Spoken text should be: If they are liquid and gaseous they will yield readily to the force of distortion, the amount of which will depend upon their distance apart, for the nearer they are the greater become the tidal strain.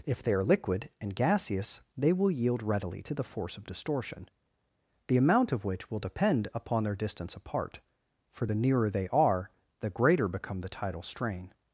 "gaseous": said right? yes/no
yes